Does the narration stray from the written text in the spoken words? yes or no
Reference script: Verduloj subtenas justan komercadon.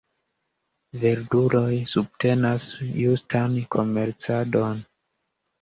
no